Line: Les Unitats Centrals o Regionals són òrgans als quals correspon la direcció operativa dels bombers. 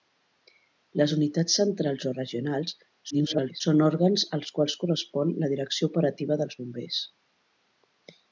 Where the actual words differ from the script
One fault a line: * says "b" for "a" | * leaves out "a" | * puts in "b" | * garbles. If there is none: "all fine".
* garbles